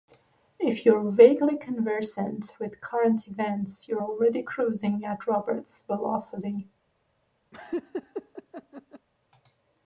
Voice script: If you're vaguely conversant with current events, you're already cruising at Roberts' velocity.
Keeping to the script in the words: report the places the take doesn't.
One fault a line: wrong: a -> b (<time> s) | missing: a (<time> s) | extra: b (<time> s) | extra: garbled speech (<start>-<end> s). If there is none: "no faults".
no faults